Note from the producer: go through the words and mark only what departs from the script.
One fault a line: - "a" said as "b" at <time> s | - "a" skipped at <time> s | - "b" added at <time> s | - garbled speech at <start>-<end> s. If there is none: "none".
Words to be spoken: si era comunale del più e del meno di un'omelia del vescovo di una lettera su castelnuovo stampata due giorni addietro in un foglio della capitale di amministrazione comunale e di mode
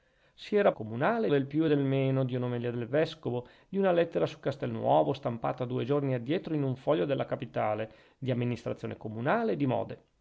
none